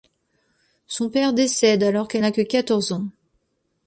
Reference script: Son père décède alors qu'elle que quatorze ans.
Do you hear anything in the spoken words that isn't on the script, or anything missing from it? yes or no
yes